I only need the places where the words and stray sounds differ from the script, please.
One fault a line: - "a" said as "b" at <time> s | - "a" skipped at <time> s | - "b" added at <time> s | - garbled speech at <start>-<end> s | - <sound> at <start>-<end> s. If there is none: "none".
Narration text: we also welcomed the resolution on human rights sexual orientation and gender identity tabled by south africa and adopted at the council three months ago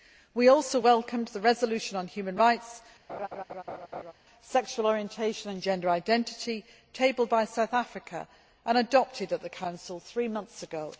- laugh at 3.1-4.1 s